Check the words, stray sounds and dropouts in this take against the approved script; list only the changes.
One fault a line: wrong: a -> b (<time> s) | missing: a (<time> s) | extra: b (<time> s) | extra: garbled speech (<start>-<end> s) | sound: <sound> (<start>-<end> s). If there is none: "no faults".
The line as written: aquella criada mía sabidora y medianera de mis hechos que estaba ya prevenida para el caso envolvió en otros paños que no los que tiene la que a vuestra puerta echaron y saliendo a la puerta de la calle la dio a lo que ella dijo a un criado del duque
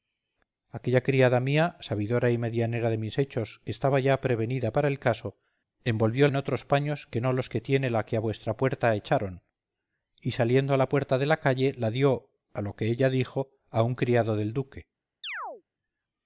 sound: chirp (15.2-15.6 s)